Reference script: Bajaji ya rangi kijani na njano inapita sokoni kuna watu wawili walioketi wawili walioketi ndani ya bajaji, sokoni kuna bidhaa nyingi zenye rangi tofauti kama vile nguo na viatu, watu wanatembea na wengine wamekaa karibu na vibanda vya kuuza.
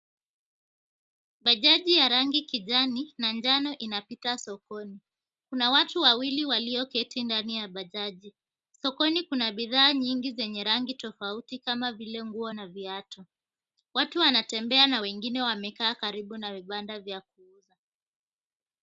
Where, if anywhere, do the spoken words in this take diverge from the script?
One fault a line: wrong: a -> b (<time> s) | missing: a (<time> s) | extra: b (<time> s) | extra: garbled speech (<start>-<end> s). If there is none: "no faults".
missing: wawili walioketi (7.2 s)